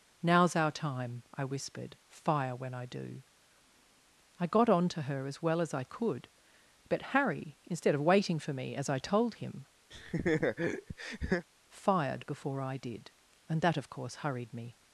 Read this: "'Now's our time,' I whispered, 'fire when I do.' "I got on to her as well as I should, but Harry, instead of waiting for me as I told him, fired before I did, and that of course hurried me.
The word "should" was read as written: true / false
false